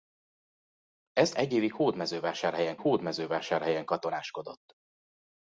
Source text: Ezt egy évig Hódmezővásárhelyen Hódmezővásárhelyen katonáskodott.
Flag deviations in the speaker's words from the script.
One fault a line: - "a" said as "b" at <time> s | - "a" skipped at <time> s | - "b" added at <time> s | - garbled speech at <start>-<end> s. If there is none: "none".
none